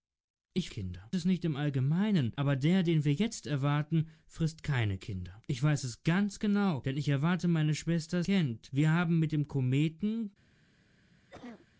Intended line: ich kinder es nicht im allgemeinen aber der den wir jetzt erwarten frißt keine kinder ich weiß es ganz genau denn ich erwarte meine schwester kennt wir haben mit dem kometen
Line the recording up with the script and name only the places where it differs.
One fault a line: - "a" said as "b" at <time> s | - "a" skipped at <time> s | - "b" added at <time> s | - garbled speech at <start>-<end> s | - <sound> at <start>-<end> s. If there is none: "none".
- cough at 11.3-11.7 s